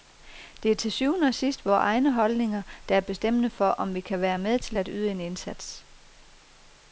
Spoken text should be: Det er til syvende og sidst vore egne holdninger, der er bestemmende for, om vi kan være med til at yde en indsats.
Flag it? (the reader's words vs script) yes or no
no